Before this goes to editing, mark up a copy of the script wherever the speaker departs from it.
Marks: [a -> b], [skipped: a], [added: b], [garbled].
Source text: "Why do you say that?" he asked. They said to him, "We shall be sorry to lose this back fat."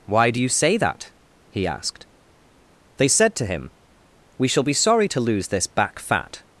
"Why do you say that?" he asked. They said to him, "We shall be sorry to lose this back fat."